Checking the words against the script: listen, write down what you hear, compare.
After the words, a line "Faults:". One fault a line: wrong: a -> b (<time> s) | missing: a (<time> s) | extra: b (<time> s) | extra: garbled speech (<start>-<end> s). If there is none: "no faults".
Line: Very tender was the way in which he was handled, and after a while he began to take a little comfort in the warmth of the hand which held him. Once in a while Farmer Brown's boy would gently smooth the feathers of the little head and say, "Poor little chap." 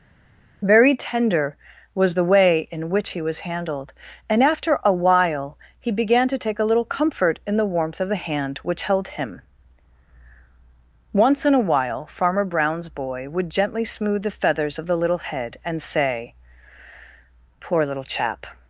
Very tender was the way in which he was handled, and after a while he began to take a little comfort in the warmth of the hand which held him. Once in a while Farmer Brown's boy would gently smooth the feathers of the little head and say, "Poor little chap."
Faults:
no faults